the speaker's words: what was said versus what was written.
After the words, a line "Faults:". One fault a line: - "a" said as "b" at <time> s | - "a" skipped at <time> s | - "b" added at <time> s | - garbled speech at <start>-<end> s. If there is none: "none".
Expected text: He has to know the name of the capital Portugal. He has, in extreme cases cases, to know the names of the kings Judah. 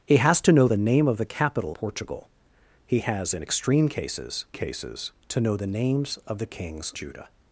He has to know the name of the capital Portugal. He has, in extreme cases cases, to know the names of the kings Judah.
Faults:
none